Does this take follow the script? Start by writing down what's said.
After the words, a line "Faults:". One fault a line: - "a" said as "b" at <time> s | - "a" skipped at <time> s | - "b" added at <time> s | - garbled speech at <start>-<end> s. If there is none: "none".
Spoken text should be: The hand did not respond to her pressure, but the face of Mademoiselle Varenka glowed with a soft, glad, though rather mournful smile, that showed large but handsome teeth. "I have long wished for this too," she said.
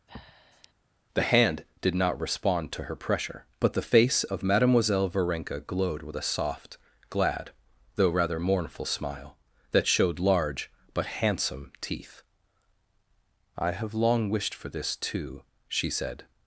The hand did not respond to her pressure, but the face of Mademoiselle Varenka glowed with a soft, glad, though rather mournful smile, that showed large but handsome teeth. "I have long wished for this too," she said.
Faults:
none